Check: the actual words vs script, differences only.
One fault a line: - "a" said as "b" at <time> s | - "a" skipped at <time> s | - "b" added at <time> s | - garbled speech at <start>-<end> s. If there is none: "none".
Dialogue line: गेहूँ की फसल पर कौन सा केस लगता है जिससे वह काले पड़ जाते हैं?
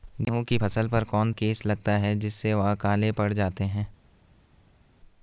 - "सा" skipped at 1.3 s